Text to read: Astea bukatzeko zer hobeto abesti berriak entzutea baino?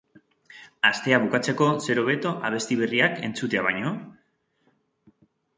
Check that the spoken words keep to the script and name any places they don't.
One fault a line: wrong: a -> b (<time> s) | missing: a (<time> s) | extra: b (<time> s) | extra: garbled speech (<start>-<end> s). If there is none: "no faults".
no faults